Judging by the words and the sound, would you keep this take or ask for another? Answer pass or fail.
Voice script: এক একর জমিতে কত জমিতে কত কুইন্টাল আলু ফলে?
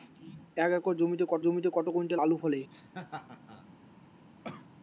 fail